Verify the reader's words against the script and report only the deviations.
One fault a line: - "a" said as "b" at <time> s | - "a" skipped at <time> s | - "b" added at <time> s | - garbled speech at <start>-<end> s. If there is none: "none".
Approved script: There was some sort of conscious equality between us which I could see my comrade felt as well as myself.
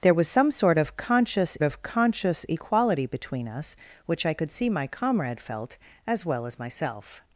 - "of conscious" added at 1.6 s